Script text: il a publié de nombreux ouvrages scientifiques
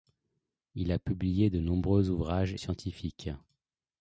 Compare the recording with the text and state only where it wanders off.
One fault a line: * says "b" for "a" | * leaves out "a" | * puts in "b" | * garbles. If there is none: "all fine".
all fine